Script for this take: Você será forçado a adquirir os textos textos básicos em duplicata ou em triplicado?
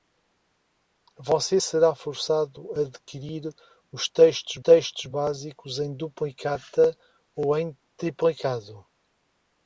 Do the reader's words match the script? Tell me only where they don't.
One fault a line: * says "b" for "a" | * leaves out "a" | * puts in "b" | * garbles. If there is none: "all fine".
all fine